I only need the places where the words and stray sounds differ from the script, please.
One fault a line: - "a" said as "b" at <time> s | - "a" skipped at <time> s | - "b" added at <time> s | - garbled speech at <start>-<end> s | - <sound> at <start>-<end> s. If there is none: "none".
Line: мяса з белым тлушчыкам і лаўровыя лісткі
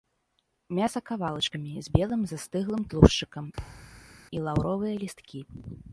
- "кавалачкамі" added at 1.1 s
- "застыглым" added at 2.3 s
- thud at 3.6-4.2 s